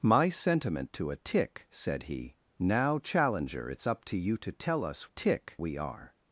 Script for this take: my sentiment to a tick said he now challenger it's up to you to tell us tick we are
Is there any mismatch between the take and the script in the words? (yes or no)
no